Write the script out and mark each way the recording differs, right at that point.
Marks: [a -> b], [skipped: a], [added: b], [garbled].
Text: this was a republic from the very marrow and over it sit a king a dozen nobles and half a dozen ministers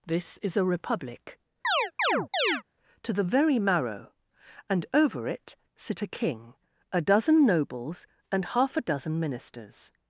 this [was -> is] a republic [from -> to] the very marrow and over it sit a king a dozen nobles and half a dozen ministers